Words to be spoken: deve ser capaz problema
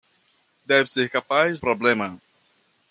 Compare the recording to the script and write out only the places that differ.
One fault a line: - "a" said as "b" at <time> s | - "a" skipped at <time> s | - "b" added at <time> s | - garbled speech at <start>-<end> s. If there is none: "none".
none